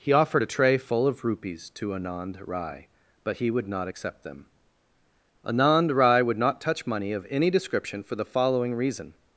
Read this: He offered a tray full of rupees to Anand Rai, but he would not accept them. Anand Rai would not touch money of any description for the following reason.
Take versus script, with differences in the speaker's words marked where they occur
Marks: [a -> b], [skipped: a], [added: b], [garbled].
He offered a tray full of rupees to Anand Rai, but he would not accept them. Anand Rai would not touch money of any description for the following reason.